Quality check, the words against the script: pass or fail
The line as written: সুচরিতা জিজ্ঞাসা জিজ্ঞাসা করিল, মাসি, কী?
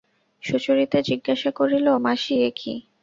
fail